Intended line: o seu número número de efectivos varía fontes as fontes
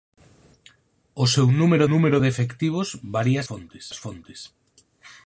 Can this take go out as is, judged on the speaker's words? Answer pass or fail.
pass